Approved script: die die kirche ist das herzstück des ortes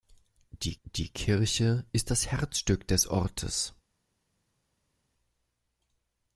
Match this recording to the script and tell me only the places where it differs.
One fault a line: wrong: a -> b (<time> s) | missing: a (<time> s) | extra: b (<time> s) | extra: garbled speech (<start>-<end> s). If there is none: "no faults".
no faults